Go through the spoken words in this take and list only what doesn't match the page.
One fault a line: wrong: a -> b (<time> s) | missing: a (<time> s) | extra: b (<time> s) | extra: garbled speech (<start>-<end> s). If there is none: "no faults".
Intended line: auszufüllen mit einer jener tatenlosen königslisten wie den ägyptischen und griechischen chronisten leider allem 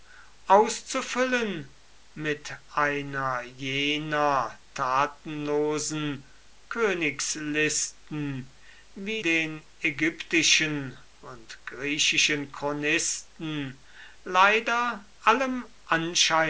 no faults